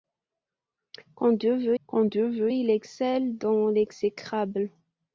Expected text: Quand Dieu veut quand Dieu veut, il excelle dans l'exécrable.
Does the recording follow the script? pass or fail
pass